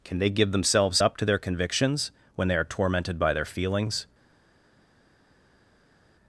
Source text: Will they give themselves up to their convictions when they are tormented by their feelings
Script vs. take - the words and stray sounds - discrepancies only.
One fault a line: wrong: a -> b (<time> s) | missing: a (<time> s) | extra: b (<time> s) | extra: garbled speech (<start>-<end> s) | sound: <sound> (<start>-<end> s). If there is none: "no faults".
wrong: Will -> Can (0.0 s)